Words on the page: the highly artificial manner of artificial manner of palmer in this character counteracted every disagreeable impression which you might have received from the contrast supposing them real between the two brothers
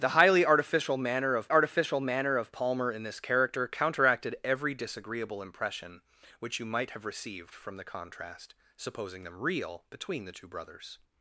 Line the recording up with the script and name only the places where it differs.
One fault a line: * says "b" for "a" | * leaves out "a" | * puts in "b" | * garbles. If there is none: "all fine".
all fine